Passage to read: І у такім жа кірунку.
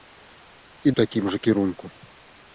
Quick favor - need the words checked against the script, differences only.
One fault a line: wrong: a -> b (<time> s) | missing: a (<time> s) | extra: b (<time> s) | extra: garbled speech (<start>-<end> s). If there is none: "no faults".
no faults